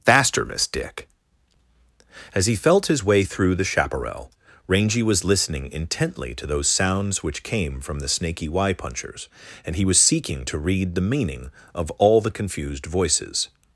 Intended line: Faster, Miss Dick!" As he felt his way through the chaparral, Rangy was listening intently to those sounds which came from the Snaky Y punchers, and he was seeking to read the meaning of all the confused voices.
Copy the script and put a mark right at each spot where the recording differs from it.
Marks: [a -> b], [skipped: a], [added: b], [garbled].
Faster, Miss Dick!" As he felt his way through the chaparral, Rangy was listening intently to those sounds which came from the Snaky Y punchers, and he was seeking to read the meaning of all the confused voices.